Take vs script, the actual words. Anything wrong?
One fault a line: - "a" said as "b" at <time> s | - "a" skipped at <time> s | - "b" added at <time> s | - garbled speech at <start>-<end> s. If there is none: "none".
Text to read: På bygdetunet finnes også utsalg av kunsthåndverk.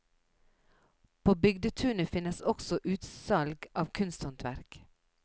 none